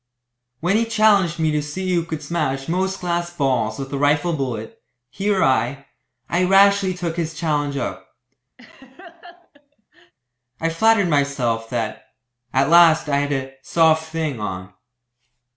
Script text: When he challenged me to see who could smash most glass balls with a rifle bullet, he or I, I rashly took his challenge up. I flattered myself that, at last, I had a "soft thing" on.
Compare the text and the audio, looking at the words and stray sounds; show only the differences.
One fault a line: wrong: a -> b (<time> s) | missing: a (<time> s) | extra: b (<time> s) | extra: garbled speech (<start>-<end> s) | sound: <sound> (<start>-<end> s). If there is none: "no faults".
sound: laugh (8.6-10.1 s)